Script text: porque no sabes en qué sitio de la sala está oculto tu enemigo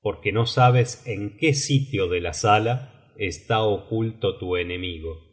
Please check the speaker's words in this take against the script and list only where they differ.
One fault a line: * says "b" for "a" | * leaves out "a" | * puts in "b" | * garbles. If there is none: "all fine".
all fine